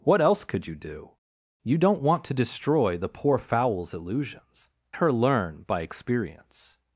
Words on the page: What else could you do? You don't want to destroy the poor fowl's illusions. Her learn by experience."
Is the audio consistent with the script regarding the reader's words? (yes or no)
yes